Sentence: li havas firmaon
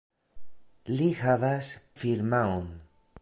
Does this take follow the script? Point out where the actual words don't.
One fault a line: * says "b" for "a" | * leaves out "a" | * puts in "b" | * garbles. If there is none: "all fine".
all fine